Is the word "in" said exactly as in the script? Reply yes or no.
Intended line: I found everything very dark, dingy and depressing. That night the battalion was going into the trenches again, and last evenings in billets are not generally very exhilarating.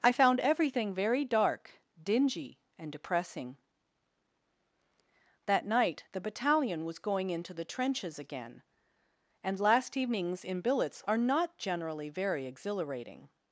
yes